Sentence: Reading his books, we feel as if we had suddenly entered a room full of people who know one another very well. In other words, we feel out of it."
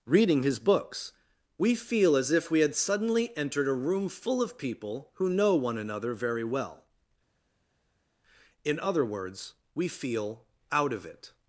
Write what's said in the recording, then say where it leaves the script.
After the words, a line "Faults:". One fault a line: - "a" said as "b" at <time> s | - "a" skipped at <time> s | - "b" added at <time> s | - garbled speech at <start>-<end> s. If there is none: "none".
Reading his books, we feel as if we had suddenly entered a room full of people who know one another very well. In other words, we feel out of it."
Faults:
none